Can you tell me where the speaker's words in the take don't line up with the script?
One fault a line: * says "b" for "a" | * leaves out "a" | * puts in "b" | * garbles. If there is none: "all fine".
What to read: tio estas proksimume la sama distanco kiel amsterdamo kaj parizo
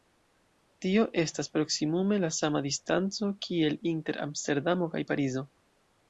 * puts in "inter"